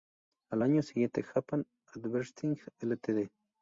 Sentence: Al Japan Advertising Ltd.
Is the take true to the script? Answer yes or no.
no